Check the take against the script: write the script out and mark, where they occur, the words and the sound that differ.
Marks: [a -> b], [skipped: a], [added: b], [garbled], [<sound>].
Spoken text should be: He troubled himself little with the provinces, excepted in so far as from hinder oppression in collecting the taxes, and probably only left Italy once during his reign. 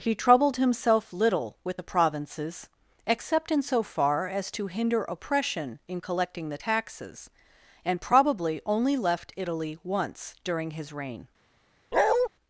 He troubled himself little with the provinces, [excepted -> except] in so far as [from -> to] hinder oppression in collecting the taxes, and probably only left Italy once during his reign. [bark]